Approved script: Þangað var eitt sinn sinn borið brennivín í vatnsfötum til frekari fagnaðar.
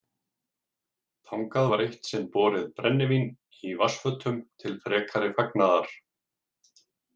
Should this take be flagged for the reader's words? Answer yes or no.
yes